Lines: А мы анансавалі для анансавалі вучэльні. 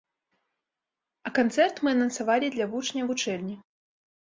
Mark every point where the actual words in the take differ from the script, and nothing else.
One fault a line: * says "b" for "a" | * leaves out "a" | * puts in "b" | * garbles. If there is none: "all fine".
* puts in "канцэрт"
* says "вучняў" for "анансавалі"